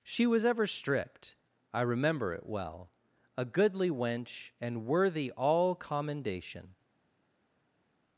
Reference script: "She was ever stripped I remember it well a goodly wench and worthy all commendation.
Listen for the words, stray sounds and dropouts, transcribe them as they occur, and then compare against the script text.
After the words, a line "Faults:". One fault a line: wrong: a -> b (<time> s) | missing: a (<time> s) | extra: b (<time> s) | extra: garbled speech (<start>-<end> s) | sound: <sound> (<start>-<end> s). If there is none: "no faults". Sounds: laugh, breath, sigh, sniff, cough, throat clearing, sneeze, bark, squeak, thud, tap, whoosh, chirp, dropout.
"She was ever stripped I remember it well a goodly wench and worthy all commendation.
Faults:
no faults